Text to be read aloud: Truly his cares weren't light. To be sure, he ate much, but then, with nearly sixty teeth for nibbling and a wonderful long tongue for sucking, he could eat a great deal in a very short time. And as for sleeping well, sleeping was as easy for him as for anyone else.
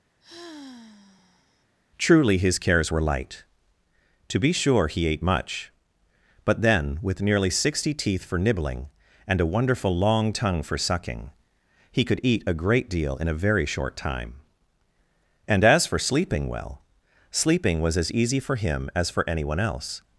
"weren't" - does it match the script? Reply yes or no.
no